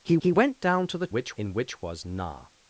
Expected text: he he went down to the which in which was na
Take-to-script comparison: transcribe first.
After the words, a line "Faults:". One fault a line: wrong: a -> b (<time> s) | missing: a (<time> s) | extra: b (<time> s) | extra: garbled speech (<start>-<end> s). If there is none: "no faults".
he he went down to the which in which was na
Faults:
no faults